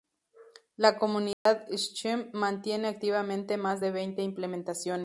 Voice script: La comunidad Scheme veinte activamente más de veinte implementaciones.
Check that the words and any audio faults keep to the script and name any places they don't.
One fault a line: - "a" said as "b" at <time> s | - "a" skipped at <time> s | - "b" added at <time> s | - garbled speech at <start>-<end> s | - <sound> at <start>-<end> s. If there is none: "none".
- dropout at 1.3-1.5 s
- "veinte" said as "mantiene" at 2.3 s